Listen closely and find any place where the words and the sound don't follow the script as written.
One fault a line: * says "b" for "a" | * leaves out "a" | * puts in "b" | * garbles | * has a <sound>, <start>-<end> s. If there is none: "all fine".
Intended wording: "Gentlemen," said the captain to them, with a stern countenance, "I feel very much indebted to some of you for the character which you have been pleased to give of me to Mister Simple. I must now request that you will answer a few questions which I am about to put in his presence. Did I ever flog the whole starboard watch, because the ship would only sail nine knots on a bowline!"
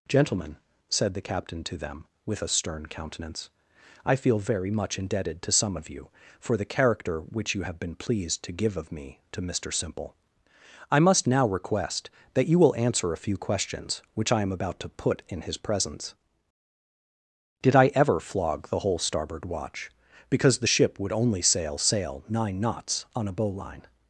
* puts in "sail"